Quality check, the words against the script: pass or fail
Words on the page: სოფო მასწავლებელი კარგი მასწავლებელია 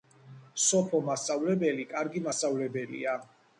pass